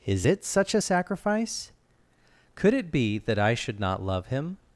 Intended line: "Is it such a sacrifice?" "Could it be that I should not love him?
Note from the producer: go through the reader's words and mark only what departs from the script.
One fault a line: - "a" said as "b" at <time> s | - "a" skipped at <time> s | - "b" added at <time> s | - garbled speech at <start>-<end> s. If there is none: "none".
none